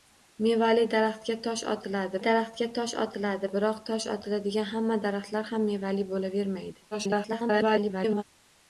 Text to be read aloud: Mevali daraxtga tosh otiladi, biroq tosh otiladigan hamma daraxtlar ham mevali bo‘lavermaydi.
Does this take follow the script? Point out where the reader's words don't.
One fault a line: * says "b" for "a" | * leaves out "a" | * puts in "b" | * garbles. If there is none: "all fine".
* puts in "daraxtga tosh otiladi"
* garbles